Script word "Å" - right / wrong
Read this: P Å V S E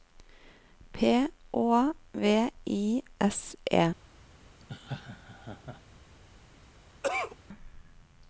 right